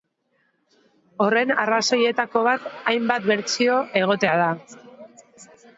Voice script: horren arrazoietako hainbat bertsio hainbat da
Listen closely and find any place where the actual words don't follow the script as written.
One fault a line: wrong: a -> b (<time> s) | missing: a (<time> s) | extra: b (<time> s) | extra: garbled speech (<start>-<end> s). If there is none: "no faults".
extra: bat (2.5 s)
wrong: hainbat -> egotea (4.0 s)